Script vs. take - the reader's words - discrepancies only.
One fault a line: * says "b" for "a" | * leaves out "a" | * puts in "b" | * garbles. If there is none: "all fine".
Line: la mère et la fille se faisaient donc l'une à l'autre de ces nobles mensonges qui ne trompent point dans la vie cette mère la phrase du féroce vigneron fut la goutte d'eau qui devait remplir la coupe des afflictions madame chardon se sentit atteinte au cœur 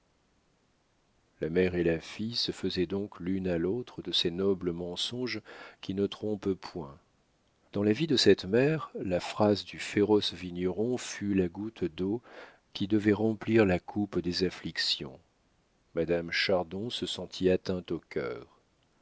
* puts in "de"